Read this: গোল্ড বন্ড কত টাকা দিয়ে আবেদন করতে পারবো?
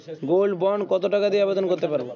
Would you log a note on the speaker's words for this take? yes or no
no